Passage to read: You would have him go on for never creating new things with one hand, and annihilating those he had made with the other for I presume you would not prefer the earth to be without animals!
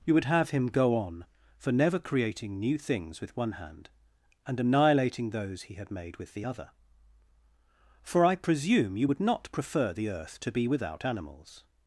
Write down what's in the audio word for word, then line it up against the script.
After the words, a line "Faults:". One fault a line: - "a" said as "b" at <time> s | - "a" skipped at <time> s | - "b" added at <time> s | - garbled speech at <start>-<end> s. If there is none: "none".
You would have him go on for never creating new things with one hand, and annihilating those he had made with the other for I presume you would not prefer the earth to be without animals!
Faults:
none